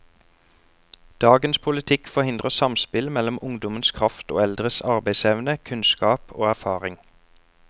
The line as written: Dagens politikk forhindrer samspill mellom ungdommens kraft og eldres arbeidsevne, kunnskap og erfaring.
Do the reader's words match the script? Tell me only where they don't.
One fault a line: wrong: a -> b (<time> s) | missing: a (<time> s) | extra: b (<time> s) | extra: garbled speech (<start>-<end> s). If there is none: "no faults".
no faults